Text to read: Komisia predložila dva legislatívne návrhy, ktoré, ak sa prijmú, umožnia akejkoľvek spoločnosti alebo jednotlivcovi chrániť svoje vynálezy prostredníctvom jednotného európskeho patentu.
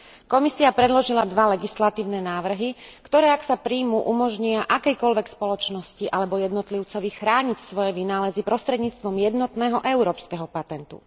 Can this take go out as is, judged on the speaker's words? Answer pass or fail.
pass